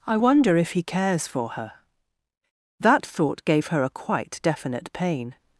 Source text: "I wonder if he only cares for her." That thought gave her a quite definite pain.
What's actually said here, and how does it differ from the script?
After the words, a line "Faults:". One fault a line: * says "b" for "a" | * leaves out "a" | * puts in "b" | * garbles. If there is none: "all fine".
"I wonder if he cares for her." That thought gave her a quite definite pain.
Faults:
* leaves out "only"